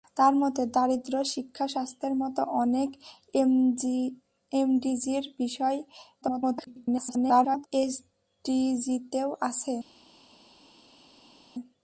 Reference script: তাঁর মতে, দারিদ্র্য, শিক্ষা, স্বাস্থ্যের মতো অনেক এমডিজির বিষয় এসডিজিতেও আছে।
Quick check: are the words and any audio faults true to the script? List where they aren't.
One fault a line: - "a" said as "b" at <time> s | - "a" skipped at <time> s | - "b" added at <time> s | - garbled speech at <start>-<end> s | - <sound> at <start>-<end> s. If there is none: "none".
- garbled speech at 6.2-7.7 s